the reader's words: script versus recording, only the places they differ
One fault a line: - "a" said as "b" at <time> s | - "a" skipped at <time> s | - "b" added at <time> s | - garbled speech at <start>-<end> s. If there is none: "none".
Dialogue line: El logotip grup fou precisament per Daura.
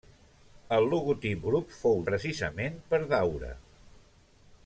none